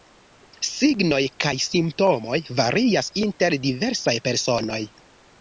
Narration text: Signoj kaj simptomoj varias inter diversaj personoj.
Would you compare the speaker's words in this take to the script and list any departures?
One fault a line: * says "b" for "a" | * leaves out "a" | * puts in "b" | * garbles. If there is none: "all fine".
all fine